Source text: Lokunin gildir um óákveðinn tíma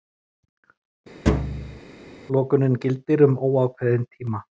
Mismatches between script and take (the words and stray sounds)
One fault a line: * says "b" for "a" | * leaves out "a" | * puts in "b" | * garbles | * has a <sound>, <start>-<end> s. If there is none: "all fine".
* has a thud, 1.3-1.8 s